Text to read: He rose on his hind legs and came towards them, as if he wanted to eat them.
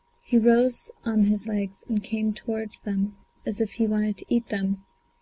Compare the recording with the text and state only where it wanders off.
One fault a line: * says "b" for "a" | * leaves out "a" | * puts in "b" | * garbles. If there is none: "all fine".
* leaves out "hind"